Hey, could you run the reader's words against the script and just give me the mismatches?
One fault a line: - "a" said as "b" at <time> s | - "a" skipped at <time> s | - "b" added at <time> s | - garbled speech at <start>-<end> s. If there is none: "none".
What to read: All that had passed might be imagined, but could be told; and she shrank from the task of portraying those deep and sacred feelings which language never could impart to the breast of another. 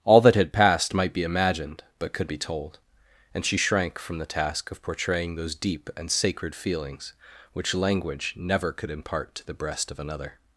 none